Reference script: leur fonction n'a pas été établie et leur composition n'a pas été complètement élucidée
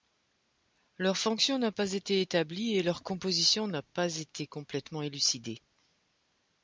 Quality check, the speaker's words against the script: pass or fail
pass